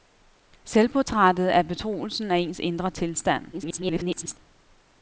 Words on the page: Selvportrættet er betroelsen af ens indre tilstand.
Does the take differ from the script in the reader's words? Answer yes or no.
yes